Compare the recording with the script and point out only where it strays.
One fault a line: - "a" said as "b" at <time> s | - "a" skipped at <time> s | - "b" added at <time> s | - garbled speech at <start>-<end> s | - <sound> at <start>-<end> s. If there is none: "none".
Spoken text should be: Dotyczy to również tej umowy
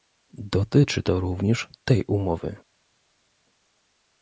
none